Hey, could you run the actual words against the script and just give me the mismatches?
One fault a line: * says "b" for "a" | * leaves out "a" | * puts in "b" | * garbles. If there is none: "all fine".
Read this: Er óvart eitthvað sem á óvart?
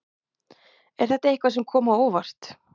* says "þetta" for "óvart"
* puts in "kom"